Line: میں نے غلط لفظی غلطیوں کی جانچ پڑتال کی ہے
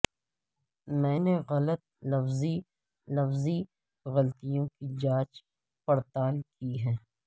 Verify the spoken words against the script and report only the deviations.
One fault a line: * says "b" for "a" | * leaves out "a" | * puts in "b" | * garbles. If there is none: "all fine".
* puts in "لفظی"